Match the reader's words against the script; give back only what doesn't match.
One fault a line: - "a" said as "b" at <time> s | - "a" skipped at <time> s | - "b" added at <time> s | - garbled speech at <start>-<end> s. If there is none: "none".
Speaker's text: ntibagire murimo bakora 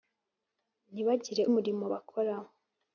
none